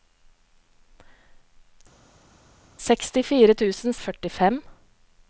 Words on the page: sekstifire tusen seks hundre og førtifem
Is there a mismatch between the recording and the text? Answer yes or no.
yes